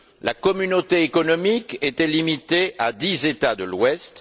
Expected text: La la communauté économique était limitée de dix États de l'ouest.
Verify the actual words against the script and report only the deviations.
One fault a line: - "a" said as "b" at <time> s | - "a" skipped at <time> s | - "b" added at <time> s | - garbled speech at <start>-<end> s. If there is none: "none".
- "la" skipped at 0.3 s
- "de" said as "à" at 2.8 s